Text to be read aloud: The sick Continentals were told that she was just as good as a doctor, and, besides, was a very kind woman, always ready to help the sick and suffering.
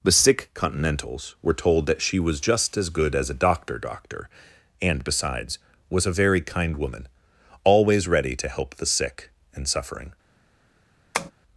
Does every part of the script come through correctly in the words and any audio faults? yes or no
no